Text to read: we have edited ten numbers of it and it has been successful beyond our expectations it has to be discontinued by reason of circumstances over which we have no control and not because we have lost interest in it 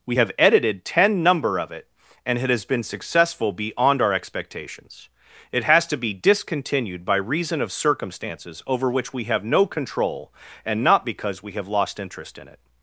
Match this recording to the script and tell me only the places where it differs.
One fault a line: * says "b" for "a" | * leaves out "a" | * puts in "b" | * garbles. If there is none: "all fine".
* says "number" for "numbers"